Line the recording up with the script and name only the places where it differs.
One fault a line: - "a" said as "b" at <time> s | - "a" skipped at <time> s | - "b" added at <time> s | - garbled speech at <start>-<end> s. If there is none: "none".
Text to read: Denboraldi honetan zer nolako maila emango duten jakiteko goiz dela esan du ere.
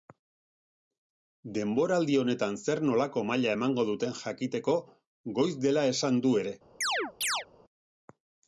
none